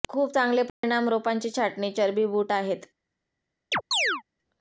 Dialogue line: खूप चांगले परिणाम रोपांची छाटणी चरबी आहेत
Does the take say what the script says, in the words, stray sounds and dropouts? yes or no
no